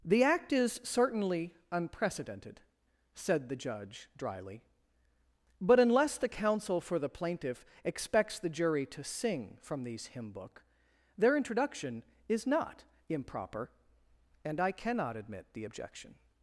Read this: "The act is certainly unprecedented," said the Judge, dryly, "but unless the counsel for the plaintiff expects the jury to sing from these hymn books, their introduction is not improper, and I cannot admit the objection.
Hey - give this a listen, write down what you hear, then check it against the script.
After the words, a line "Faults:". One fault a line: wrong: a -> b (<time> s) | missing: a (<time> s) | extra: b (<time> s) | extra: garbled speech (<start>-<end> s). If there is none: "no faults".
"The act is certainly unprecedented," said the Judge, dryly, "but unless the counsel for the plaintiff expects the jury to sing from these hymn book, their introduction is not improper, and I cannot admit the objection.
Faults:
wrong: books -> book (10.3 s)